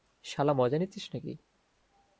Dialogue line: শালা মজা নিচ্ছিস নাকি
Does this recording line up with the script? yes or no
yes